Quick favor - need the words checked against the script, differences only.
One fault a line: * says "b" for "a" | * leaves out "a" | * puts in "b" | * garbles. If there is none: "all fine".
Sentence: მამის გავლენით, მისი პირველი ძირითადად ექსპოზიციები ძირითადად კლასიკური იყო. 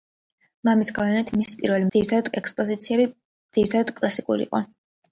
all fine